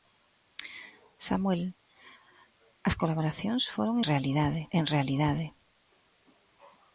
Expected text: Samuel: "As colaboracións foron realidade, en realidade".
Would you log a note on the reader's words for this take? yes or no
no